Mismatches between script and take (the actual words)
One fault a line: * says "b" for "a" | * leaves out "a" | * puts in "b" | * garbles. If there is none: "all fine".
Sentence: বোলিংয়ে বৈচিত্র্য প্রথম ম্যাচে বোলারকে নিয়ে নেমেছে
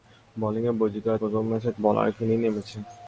all fine